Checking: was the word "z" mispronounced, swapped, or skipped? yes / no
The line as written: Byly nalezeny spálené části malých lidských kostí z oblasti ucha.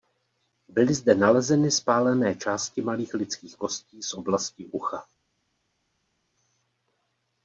no